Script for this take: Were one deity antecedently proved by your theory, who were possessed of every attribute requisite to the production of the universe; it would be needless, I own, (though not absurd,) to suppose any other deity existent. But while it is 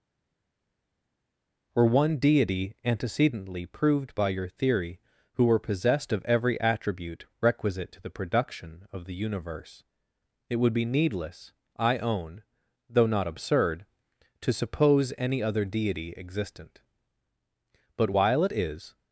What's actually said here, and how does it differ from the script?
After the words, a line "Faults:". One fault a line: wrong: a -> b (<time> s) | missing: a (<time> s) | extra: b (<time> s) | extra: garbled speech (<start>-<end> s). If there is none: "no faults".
Were one deity antecedently proved by your theory, who were possessed of every attribute requisite to the production of the universe; it would be needless, I own, (though not absurd,) to suppose any other deity existent. But while it is
Faults:
no faults